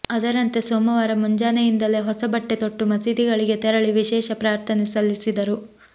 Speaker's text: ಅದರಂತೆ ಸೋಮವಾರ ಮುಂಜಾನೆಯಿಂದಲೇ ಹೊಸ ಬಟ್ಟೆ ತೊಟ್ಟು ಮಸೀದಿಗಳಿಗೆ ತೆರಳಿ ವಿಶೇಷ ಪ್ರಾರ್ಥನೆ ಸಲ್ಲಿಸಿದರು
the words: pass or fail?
pass